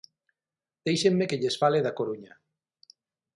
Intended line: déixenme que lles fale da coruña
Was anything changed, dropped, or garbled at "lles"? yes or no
no